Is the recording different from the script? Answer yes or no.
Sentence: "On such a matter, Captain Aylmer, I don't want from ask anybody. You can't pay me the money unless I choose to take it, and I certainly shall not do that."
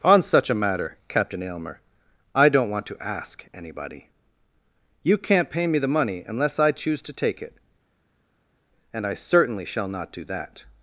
yes